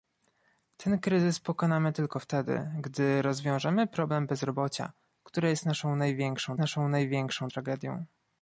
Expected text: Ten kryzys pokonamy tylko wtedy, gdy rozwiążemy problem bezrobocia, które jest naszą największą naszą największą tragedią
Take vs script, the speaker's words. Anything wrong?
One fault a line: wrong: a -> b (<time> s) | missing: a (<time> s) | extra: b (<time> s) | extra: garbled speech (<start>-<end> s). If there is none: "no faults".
no faults